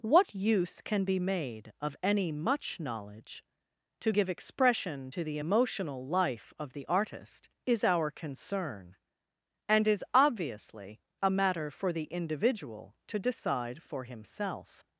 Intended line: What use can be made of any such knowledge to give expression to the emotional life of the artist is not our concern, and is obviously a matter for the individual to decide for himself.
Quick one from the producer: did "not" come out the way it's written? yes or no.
no